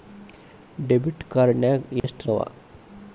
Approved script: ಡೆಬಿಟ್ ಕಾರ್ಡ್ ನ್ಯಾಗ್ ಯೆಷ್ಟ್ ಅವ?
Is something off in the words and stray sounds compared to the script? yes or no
yes